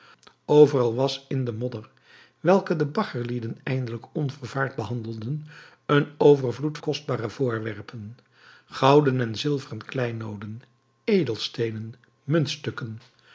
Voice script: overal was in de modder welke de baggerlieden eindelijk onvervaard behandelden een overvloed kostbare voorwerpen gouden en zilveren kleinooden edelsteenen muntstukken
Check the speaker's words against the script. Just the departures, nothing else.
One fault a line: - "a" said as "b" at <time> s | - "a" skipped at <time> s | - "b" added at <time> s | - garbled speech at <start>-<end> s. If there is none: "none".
none